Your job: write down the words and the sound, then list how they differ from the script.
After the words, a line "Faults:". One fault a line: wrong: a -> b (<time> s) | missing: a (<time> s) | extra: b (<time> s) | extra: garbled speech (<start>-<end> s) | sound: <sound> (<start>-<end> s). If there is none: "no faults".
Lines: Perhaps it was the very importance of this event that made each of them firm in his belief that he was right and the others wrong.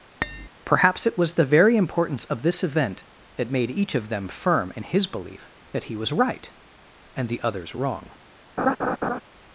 Perhaps it was the very importance of this event that made each of them firm in his belief that he was right and the others wrong.
Faults:
sound: tap (0.2-0.5 s)
sound: laugh (8.6-9.2 s)